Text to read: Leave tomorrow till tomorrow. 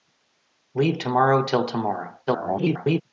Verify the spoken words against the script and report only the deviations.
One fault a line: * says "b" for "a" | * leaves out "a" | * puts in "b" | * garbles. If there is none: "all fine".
* garbles